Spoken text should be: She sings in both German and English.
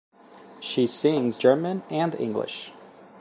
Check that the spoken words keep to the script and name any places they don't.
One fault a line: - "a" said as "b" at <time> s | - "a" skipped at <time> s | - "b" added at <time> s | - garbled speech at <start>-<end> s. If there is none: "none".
- "in both" skipped at 1.4 s